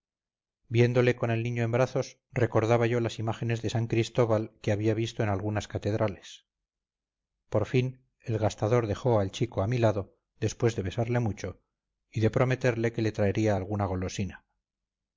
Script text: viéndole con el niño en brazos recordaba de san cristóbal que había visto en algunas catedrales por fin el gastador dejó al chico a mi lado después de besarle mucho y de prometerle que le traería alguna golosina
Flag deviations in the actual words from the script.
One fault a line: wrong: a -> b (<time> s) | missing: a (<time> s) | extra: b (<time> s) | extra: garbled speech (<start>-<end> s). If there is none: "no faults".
extra: yo las imágenes (2.9 s)